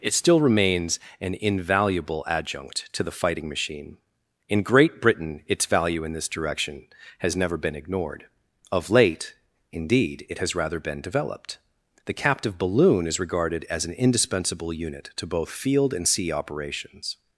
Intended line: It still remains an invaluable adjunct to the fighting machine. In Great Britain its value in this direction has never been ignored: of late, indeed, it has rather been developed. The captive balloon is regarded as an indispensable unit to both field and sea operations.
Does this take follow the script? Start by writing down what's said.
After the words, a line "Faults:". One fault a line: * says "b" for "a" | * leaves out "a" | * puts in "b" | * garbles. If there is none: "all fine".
It still remains an invaluable adjunct to the fighting machine. In Great Britain its value in this direction has never been ignored: of late, indeed, it has rather been developed. The captive balloon is regarded as an indispensable unit to both field and sea operations.
Faults:
all fine